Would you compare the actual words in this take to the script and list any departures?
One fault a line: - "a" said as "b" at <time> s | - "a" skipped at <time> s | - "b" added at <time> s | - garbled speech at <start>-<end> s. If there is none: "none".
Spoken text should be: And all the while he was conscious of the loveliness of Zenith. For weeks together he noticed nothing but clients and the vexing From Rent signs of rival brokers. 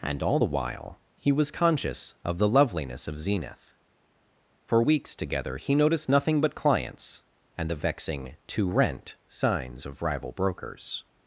- "From" said as "To" at 8.5 s